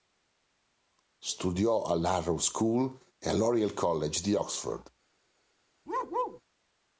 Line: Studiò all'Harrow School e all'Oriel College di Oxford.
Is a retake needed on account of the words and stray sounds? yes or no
yes